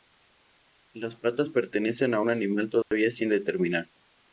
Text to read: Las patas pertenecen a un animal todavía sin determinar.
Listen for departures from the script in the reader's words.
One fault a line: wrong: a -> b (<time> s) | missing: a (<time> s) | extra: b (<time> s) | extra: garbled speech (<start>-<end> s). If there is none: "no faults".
no faults